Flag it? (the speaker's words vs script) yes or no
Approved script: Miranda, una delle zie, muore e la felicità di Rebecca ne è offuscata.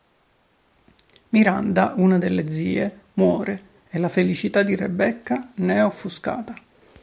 no